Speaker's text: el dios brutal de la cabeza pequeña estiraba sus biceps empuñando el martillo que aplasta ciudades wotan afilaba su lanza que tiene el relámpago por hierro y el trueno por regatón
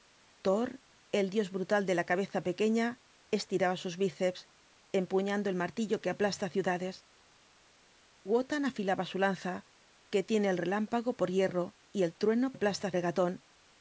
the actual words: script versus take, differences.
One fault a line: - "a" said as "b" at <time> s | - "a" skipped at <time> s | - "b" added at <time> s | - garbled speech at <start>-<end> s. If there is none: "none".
- "por" said as "aplasta" at 12.5 s